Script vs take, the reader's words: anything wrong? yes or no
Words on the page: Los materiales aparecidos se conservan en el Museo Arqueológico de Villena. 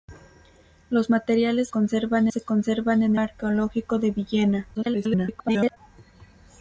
yes